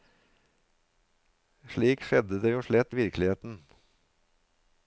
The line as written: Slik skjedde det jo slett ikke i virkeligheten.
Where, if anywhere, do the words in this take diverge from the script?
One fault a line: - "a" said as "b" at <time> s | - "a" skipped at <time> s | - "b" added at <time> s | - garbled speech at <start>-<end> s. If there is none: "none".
- "ikke" skipped at 2.9 s